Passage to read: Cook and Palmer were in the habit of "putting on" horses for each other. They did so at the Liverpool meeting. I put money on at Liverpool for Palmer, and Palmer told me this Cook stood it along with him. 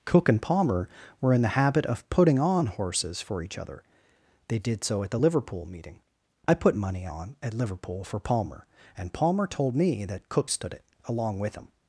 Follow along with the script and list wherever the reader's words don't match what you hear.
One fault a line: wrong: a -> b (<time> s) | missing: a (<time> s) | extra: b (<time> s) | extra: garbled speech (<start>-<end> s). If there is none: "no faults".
wrong: this -> that (10.0 s)